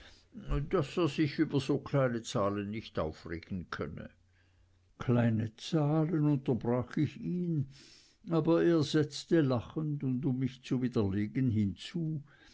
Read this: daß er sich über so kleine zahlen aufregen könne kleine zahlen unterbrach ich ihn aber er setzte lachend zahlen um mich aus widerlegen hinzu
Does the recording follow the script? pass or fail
fail